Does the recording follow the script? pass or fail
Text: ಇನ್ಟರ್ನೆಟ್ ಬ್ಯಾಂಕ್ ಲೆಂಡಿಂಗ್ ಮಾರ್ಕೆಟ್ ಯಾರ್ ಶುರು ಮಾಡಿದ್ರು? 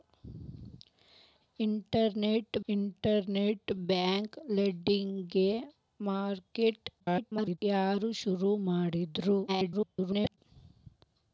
fail